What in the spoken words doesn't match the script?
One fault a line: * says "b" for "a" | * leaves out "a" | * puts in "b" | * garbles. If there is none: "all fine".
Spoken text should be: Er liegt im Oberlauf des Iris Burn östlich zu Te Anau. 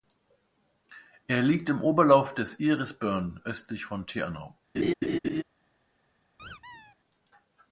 * says "von" for "zu"